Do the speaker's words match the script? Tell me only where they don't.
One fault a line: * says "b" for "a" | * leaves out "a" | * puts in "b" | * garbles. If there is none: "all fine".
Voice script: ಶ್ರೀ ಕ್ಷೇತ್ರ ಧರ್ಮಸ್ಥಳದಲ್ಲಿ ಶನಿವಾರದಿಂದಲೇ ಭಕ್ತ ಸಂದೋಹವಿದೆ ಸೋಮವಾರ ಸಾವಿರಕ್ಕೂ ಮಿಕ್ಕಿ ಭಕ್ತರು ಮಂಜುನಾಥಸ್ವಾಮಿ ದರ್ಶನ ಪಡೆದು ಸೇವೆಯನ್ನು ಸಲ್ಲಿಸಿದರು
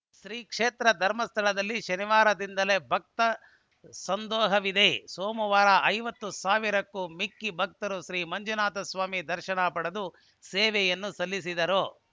* puts in "ಐವತ್ತು"
* puts in "ಶ್ರೀ"